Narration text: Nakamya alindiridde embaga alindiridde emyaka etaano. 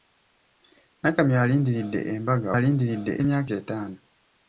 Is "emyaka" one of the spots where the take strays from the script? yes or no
no